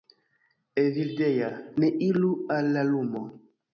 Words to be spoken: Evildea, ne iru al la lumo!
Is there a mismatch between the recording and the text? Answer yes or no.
no